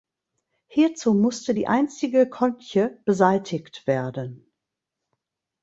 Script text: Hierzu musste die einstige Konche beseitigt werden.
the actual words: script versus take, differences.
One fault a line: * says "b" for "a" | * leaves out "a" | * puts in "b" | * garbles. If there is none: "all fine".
all fine